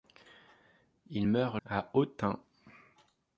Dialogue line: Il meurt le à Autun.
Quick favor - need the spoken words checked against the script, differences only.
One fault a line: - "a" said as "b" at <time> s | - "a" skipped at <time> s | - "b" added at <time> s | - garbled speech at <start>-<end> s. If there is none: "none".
- "le" skipped at 1.6 s